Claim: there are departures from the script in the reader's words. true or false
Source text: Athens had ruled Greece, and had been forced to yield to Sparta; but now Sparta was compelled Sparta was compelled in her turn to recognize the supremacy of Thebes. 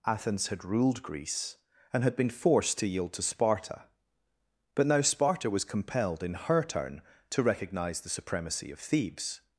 true